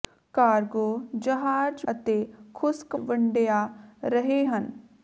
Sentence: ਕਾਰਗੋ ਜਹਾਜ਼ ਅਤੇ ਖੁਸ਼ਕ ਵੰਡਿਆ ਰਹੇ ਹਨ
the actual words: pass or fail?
pass